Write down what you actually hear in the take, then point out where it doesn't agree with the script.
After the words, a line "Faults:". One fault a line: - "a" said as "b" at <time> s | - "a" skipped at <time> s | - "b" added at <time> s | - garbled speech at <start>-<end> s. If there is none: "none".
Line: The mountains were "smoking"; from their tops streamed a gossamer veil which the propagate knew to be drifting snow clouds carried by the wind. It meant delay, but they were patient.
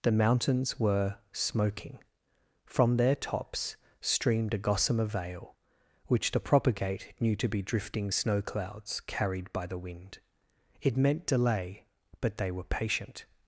The mountains were "smoking"; from their tops streamed a gossamer veil which the propagate knew to be drifting snow clouds carried by the wind. It meant delay, but they were patient.
Faults:
none